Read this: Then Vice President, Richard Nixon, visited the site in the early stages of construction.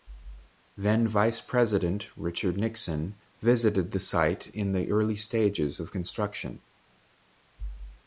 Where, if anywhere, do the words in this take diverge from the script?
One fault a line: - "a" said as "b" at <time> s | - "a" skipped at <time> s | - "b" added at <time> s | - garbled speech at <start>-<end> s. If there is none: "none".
none